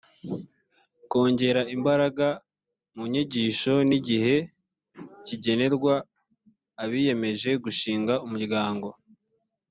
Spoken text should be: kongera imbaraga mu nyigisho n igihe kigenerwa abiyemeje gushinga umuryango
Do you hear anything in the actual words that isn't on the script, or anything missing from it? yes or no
no